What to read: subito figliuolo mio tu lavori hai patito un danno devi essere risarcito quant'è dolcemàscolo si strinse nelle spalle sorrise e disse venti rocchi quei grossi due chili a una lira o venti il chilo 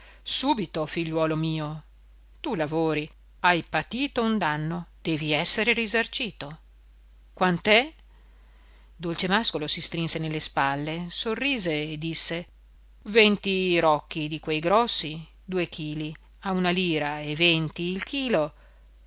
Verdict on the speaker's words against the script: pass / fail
fail